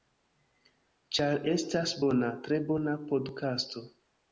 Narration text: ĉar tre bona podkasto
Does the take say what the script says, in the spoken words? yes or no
no